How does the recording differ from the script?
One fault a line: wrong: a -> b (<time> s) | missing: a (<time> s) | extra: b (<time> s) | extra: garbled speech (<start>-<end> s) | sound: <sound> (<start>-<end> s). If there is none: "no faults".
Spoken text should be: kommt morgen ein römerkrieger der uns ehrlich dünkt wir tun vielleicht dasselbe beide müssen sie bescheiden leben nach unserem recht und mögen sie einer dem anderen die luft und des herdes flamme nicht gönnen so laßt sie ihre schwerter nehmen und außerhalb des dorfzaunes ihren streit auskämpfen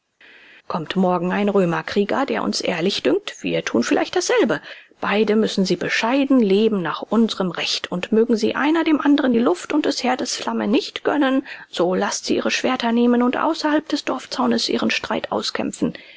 no faults